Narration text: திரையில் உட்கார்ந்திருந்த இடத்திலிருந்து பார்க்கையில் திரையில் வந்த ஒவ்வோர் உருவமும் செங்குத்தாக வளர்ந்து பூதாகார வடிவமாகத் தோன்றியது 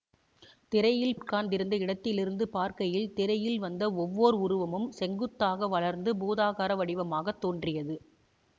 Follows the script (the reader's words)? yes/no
yes